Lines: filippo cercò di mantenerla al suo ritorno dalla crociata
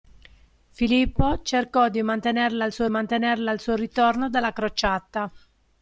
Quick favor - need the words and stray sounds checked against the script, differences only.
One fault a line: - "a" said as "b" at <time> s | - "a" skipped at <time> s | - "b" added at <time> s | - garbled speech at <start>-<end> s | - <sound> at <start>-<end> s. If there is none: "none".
- "mantenerla al suo" added at 2.9 s